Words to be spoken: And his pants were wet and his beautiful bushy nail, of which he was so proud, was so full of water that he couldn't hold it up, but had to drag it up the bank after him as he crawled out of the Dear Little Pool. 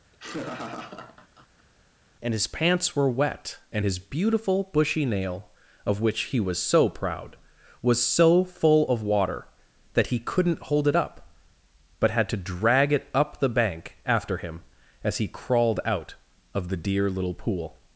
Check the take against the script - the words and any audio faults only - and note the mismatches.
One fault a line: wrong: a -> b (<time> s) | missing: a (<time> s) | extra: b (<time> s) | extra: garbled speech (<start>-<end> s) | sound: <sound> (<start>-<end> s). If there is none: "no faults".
sound: laugh (0.1-1.7 s)